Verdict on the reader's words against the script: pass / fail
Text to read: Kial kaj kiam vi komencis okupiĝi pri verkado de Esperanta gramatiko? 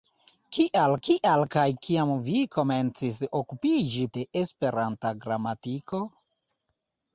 fail